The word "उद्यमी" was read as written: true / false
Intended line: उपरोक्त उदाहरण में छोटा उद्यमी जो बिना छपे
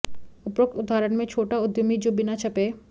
true